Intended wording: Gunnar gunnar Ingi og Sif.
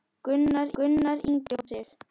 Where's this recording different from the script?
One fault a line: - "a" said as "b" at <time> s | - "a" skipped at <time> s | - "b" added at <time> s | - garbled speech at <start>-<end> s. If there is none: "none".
none